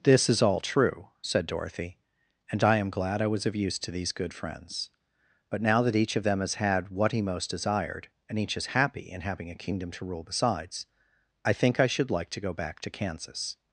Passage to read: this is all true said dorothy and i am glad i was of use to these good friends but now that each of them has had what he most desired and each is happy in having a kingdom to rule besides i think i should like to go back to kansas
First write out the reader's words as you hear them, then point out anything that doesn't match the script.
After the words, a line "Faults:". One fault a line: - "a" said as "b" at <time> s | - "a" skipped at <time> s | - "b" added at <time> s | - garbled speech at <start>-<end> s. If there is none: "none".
this is all true said dorothy and i am glad i was of use to these good friends but now that each of them has had what he most desired and each is happy in having a kingdom to rule besides i think i should like to go back to kansas
Faults:
none